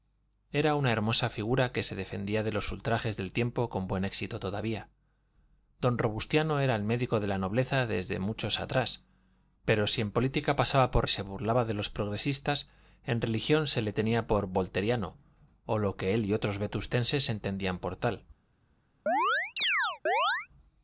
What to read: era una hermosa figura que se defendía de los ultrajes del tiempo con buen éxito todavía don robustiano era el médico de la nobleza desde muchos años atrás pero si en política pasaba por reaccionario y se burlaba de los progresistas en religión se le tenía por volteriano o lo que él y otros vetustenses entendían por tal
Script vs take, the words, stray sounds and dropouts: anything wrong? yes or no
yes